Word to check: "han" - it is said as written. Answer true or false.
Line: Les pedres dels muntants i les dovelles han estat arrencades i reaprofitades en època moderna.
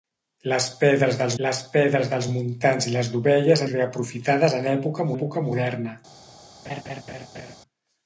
false